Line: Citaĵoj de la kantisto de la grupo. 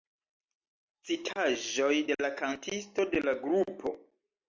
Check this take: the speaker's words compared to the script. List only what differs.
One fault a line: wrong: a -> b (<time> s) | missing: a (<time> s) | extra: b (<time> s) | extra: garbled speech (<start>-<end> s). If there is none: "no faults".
no faults